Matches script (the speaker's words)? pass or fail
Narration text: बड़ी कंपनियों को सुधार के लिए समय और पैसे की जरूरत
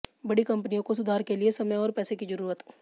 pass